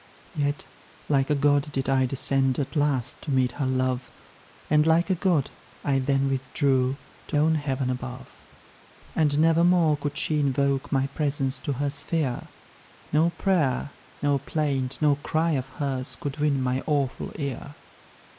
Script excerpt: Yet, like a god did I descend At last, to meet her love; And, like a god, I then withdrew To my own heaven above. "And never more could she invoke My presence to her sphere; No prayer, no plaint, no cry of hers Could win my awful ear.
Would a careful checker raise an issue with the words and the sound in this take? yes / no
yes